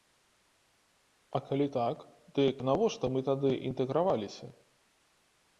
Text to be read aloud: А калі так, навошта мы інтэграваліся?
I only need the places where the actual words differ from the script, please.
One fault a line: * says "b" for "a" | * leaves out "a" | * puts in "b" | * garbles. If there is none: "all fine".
* puts in "дык"
* puts in "тады"